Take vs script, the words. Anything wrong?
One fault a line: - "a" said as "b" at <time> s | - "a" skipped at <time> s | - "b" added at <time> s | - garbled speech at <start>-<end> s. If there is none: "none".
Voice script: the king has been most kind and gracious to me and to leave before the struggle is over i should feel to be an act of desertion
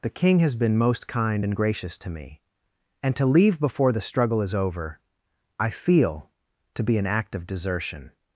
- "should" skipped at 5.7 s